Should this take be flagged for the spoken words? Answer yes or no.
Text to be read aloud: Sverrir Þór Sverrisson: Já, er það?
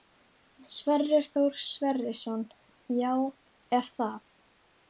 no